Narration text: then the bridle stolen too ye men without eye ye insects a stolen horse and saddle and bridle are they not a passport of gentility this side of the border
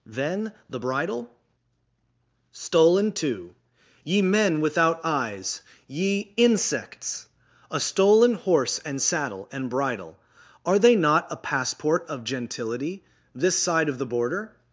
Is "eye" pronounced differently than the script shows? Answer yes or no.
yes